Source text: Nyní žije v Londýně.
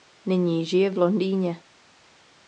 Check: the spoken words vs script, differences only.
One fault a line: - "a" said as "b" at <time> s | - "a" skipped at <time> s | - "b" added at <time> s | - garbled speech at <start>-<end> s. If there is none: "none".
none